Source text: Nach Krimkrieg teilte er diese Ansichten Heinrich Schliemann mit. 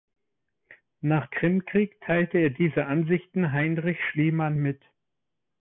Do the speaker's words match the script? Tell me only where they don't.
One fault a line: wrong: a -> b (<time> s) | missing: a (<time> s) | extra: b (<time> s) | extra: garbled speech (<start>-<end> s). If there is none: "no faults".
no faults